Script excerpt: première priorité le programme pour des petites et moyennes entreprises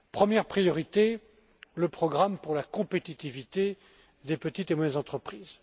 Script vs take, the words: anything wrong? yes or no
yes